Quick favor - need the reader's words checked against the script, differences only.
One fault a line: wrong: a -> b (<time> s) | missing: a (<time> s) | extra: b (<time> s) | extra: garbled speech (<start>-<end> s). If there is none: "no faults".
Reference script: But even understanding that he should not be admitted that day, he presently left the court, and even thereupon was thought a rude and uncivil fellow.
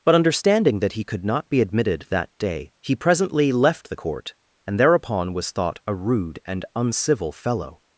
missing: even (0.1 s)
wrong: should -> could (1.0 s)
missing: even (4.8 s)